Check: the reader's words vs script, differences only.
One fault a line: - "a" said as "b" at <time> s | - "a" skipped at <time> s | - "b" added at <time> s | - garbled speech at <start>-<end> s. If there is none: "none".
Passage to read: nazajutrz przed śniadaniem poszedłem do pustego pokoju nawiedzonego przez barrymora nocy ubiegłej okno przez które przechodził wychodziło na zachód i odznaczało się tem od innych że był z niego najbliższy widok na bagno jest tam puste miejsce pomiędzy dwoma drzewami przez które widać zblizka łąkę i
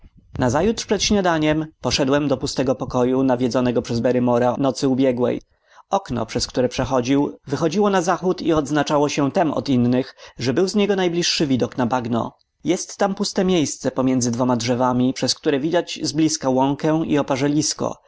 none